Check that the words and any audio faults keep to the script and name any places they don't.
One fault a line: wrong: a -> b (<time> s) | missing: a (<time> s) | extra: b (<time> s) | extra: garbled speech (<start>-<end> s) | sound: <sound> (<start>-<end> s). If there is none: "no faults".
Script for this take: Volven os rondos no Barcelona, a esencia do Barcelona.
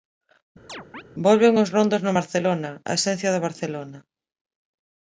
sound: chirp (0.7-1.0 s)